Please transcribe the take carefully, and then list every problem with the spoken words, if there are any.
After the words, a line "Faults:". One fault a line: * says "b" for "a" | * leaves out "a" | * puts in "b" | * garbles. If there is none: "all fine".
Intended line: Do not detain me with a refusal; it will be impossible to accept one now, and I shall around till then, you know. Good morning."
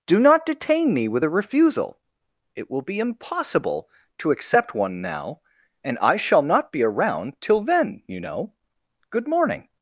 Do not detain me with a refusal; it will be impossible to accept one now, and I shall not be around till then, you know. Good morning."
Faults:
* puts in "not be"